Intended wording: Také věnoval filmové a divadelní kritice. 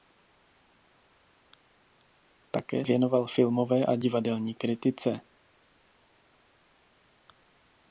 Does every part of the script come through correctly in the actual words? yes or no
yes